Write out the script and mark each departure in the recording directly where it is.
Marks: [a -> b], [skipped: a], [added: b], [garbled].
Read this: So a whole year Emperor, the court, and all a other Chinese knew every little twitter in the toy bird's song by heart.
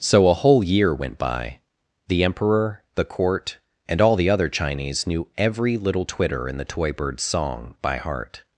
So a whole year [added: went by The] Emperor, the court, and all [a -> the] other Chinese knew every little twitter in the toy bird's song by heart.